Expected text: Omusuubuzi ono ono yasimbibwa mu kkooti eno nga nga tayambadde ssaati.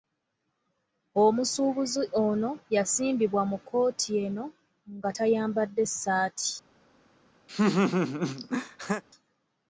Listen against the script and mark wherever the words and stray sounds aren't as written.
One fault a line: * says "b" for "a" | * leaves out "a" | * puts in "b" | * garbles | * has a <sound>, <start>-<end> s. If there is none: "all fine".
* leaves out "ono"
* leaves out "nga"
* has a laugh, 7.5-9.0 s